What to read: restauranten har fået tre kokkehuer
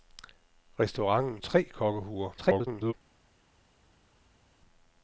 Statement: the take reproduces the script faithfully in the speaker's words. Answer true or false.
false